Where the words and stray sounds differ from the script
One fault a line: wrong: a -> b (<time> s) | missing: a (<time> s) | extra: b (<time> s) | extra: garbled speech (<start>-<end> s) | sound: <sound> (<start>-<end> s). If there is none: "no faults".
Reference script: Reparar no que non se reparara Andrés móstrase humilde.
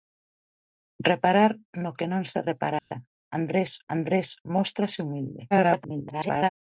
sound: dropout (2.8-2.9 s)
extra: Andrés (4.0 s)
extra: garbled speech (5.5-6.5 s)